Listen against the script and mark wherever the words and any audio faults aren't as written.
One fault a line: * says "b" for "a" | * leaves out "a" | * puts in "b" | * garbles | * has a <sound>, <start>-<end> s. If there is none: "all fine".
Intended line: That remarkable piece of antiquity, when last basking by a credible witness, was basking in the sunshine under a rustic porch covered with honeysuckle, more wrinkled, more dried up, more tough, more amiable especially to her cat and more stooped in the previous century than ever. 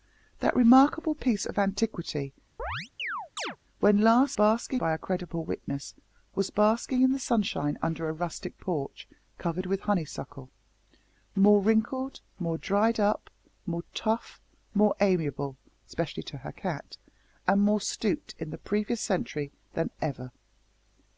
* has a chirp, 2.6-3.6 s